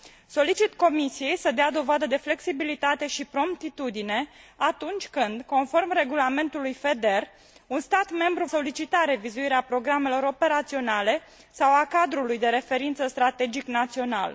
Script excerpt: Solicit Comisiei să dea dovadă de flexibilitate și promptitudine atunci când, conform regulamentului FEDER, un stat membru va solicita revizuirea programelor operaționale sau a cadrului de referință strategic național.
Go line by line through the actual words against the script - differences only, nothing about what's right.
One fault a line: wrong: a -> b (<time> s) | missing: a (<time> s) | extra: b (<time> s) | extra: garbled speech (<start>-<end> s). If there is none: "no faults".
missing: va (8.4 s)